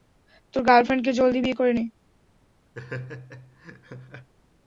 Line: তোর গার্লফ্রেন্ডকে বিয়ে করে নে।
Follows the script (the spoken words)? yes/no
no